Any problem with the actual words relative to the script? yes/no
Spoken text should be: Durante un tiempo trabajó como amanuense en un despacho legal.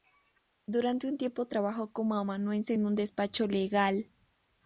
no